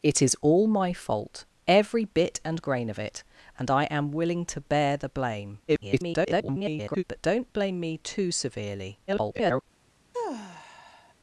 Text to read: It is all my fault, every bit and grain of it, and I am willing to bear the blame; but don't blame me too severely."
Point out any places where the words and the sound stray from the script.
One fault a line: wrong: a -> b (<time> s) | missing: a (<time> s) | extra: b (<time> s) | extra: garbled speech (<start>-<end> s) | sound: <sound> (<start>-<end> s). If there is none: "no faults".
extra: garbled speech (5.7-7.0 s)
extra: garbled speech (9.1-9.6 s)
sound: sigh (10.1-11.1 s)